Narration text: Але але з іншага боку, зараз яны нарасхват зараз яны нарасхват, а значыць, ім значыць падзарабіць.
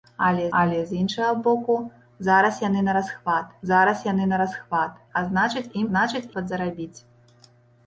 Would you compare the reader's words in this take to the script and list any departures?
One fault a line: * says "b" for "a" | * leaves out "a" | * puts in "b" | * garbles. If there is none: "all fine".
all fine